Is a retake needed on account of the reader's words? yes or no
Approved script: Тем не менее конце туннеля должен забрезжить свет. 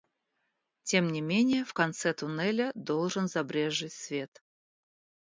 yes